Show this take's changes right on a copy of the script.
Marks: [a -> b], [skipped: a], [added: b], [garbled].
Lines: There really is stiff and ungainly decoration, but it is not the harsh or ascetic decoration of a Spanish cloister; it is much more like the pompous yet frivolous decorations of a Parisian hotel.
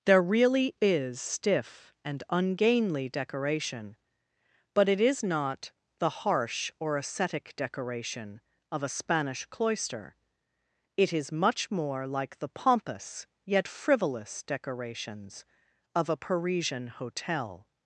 There really is stiff and ungainly decoration, but it is not the harsh or ascetic decoration of a Spanish cloister; it is much more like the pompous yet frivolous decorations of a Parisian hotel.